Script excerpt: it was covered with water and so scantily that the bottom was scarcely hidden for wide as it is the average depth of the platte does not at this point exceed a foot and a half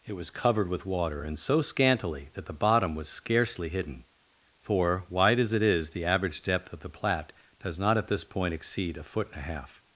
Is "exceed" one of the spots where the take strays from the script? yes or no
no